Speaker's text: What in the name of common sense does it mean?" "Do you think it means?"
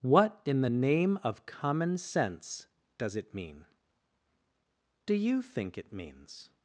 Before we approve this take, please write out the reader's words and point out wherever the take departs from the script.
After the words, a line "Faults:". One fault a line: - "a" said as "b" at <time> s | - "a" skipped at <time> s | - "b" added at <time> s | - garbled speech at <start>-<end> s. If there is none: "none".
What in the name of common sense does it mean?" "Do you think it means?"
Faults:
none